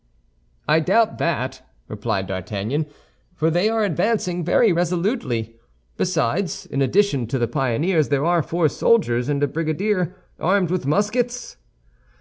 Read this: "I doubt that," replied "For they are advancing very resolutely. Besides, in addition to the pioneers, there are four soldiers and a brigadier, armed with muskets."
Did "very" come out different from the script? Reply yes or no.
no